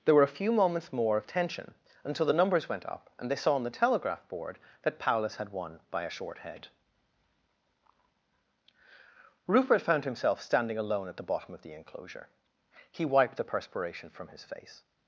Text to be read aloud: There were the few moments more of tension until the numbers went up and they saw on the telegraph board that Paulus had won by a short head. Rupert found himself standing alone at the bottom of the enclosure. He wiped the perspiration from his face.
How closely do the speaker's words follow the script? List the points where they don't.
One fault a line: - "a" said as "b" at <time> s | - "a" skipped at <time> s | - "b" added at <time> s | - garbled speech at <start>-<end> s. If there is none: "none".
- "the" said as "a" at 0.2 s